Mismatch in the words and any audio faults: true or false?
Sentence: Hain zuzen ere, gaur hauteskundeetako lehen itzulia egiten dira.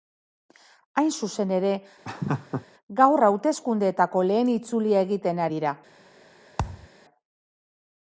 true